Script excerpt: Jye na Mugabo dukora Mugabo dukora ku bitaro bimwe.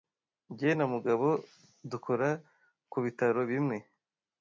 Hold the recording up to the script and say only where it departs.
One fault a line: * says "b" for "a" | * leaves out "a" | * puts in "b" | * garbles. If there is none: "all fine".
* leaves out "Mugabo dukora"